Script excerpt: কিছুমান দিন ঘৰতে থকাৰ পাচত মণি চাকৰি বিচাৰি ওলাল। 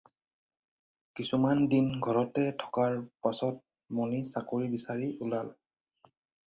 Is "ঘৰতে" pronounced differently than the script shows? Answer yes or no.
no